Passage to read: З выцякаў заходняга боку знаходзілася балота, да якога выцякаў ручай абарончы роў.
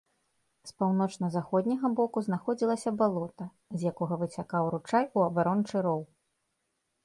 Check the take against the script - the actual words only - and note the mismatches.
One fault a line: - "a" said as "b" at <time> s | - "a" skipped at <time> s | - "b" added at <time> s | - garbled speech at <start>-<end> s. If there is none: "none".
- "выцякаў" said as "паўночна" at 0.8 s
- "да" said as "з" at 3.8 s
- "у" added at 5.2 s